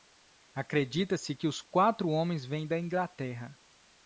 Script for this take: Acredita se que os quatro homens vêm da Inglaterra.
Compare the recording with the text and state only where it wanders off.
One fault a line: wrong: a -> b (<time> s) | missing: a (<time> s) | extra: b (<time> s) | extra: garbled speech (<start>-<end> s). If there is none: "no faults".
no faults